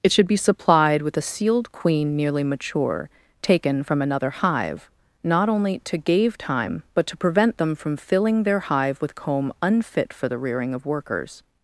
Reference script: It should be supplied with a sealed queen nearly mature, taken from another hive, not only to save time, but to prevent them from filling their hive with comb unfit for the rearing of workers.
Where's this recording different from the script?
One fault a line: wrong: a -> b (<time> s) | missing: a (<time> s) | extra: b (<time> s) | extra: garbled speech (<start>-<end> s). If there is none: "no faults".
wrong: save -> gave (6.0 s)